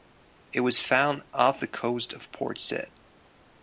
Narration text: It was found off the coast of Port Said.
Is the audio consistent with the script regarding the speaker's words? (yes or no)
yes